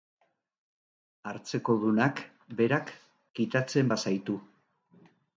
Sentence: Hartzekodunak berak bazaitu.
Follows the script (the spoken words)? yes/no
no